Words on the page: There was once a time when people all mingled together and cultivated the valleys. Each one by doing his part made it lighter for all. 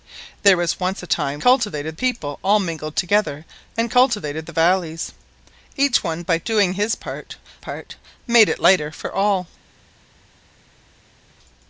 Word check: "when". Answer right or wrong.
wrong